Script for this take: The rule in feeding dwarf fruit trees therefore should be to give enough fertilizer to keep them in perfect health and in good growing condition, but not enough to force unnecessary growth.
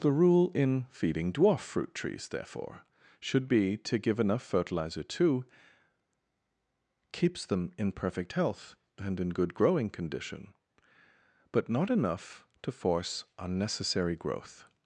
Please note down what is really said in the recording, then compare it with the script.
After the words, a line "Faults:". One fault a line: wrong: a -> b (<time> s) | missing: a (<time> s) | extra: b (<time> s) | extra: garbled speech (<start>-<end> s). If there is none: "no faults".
The rule in feeding dwarf fruit trees therefore should be to give enough fertilizer to keeps them in perfect health and in good growing condition, but not enough to force unnecessary growth.
Faults:
wrong: keep -> keeps (7.1 s)